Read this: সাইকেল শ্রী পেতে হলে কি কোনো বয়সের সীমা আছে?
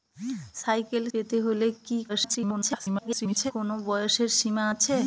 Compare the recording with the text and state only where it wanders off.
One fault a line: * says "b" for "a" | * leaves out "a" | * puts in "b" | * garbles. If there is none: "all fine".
* leaves out "শ্রী"
* garbles